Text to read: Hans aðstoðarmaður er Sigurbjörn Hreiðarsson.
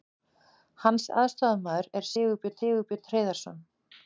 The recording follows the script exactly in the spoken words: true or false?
false